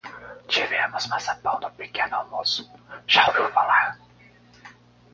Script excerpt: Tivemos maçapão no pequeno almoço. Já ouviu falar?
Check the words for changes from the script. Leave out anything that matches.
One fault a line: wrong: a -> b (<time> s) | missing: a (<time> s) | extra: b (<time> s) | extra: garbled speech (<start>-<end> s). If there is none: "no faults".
no faults